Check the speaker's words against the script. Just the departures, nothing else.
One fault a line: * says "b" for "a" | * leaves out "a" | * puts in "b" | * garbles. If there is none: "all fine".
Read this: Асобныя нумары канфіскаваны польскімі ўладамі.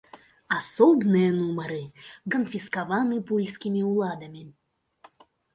all fine